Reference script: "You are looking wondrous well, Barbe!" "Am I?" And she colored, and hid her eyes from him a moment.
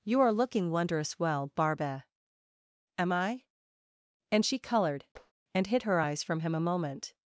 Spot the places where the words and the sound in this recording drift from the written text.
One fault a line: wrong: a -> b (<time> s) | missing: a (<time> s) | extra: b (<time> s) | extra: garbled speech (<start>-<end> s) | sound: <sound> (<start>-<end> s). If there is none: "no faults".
sound: tap (5.2-5.3 s)